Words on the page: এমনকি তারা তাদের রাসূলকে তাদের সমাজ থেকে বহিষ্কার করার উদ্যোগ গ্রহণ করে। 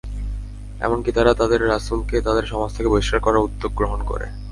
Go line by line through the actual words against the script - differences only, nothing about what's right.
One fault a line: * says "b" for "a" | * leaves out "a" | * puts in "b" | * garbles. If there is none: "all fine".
all fine